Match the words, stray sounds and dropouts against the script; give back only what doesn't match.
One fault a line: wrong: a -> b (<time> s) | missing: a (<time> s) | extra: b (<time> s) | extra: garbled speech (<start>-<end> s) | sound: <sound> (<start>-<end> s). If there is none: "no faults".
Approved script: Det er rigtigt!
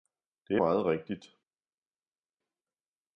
extra: meget (0.5 s)